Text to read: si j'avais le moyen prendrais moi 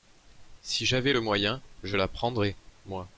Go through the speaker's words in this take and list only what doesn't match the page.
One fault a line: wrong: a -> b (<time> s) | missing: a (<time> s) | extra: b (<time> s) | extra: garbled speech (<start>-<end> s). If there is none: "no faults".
extra: je la (1.8 s)